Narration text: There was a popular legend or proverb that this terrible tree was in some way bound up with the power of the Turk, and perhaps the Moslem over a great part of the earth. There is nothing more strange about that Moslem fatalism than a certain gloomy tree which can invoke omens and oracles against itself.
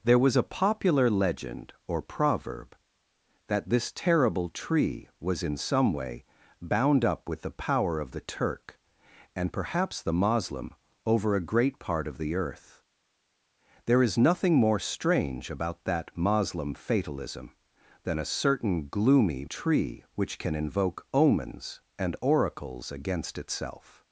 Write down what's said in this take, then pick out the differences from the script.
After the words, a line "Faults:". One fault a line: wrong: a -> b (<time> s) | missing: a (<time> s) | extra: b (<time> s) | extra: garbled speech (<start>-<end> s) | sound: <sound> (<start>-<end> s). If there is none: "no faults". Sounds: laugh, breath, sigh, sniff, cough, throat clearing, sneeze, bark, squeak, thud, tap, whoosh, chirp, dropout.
There was a popular legend or proverb that this terrible tree was in some way bound up with the power of the Turk, and perhaps the Moslem over a great part of the earth. There is nothing more strange about that Moslem fatalism than a certain gloomy tree which can invoke omens and oracles against itself.
Faults:
no faults